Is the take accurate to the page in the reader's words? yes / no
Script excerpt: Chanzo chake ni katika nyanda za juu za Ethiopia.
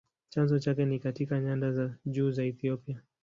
yes